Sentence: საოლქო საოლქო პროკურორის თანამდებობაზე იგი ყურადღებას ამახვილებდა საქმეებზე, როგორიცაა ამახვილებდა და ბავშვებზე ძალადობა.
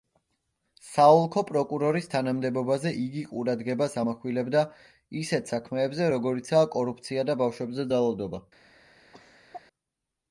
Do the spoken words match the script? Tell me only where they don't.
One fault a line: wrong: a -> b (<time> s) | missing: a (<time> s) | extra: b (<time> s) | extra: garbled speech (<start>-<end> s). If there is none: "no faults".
missing: საოლქო (1.4 s)
extra: ისეთ (5.2 s)
wrong: ამახვილებდა -> კორუფცია (6.8 s)